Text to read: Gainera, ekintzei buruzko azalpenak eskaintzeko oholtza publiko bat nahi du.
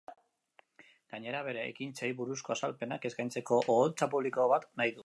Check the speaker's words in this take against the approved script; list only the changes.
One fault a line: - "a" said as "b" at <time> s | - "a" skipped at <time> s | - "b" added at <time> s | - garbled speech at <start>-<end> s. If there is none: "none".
- "bere" added at 1.5 s